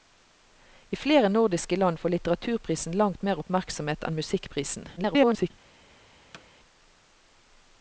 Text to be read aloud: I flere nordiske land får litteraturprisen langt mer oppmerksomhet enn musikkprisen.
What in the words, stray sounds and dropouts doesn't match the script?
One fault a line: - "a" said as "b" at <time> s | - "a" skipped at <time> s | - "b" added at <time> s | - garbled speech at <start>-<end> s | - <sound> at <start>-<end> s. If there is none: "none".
- garbled speech at 5.0-5.5 s
- thud at 6.3-6.5 s